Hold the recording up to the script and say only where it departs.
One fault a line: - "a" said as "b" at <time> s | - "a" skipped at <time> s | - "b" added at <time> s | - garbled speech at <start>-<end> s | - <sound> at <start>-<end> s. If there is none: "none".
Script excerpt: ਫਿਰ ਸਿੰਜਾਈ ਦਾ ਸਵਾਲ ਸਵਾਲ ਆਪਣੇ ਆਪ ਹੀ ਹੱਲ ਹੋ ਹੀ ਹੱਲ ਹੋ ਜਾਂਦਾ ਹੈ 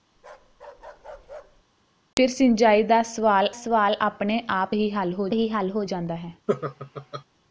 - bark at 0.2-1.6 s
- laugh at 6.5-7.2 s